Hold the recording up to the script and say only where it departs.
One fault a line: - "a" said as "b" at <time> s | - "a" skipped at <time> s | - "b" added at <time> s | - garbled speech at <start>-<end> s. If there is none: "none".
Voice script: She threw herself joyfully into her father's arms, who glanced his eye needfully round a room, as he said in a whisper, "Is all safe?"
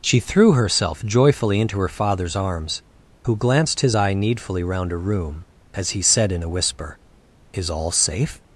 none